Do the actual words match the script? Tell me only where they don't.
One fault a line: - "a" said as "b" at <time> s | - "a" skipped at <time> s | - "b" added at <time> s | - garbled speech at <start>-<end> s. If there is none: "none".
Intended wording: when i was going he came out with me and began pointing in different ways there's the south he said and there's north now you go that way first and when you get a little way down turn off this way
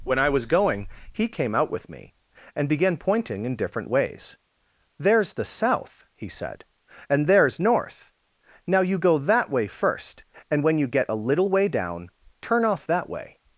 - "this" said as "that" at 12.9 s